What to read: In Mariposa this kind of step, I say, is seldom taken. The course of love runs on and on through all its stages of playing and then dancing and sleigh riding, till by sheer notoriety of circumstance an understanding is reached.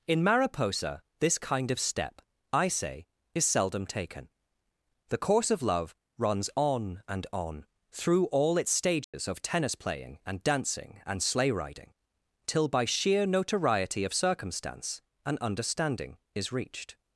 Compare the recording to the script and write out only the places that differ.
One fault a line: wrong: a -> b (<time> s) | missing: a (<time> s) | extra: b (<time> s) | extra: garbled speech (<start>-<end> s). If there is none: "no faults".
extra: tennis (9.4 s)
missing: then (10.4 s)